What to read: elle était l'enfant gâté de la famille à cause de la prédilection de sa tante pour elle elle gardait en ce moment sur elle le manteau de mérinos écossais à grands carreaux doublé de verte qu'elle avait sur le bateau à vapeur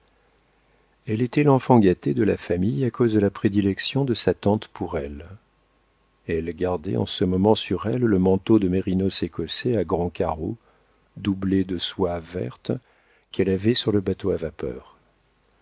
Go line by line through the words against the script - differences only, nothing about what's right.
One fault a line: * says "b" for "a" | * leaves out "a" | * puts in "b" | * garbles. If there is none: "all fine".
* puts in "soie"